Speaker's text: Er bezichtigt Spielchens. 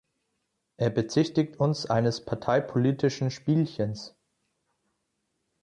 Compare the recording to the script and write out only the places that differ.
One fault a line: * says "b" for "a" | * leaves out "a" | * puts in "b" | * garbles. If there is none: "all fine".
* puts in "uns eines parteipolitischen"